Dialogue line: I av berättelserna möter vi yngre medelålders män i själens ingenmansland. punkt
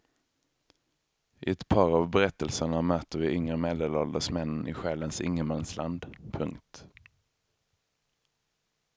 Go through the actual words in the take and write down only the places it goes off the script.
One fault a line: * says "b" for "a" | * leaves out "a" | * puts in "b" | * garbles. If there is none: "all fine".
* puts in "ett par"